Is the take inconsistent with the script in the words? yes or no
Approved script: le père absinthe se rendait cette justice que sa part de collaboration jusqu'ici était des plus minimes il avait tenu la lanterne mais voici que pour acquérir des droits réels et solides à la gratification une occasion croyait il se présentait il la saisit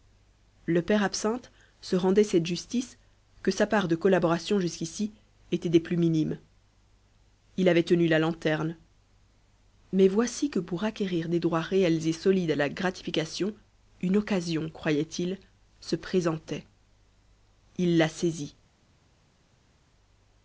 no